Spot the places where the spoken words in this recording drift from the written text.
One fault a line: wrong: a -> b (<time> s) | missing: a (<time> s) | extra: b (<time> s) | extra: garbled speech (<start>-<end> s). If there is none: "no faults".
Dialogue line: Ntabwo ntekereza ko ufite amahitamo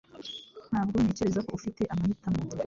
no faults